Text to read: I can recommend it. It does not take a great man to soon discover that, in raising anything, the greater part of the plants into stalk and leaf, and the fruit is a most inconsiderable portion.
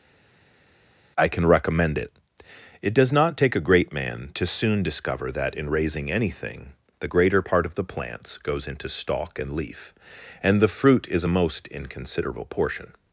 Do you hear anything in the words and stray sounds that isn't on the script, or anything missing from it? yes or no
yes